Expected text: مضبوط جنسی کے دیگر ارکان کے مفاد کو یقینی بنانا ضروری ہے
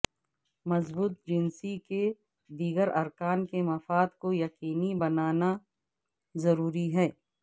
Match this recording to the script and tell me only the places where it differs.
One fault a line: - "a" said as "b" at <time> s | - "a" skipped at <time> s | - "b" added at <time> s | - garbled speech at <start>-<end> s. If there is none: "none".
none